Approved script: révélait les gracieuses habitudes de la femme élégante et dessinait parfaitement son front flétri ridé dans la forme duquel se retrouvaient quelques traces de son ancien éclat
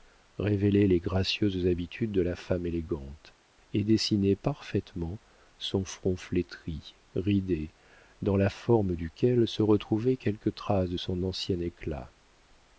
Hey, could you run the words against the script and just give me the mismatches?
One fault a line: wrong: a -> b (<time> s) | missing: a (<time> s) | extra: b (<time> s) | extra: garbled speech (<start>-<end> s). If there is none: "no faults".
no faults